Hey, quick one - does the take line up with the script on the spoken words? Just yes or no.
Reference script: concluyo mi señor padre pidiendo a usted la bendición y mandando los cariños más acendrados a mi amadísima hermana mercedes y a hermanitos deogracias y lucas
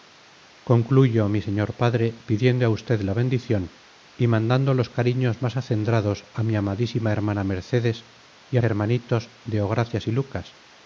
yes